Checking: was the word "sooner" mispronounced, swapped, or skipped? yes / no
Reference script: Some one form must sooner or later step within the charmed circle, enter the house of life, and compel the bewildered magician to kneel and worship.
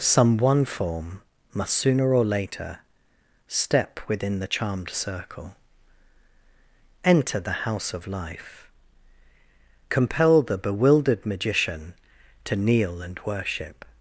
no